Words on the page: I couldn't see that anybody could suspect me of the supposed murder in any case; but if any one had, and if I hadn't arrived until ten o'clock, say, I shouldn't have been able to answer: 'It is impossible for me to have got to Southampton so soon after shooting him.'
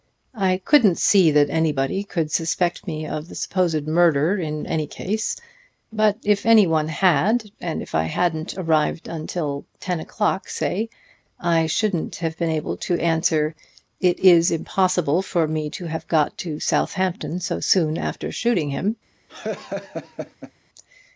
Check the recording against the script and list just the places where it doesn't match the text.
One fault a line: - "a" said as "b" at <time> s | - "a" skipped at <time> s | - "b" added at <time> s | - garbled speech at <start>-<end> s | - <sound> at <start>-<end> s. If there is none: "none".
- laugh at 19.3-20.5 s